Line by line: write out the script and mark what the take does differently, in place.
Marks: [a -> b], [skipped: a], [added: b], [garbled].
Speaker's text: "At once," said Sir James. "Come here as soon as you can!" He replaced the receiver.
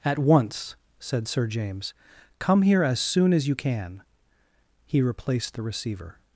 "At once," said Sir James. "Come here as soon as you can!" He replaced the receiver.